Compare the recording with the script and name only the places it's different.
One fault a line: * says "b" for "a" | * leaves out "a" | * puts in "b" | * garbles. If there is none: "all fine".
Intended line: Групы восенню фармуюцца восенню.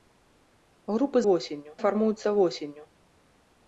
all fine